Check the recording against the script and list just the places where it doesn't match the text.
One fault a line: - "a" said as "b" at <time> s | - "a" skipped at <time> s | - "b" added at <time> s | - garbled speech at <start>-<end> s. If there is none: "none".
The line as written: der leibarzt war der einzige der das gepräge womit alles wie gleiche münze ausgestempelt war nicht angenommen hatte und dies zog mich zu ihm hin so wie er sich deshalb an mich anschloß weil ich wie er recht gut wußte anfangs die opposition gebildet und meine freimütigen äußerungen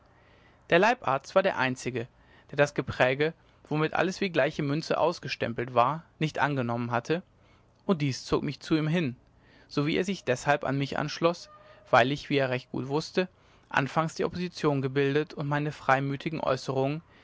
none